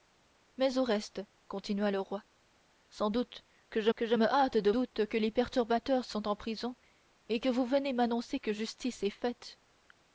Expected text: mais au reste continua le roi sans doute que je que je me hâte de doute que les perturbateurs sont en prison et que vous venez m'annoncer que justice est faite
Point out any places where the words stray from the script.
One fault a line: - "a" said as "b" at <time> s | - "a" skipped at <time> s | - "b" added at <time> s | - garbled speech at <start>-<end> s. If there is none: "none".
none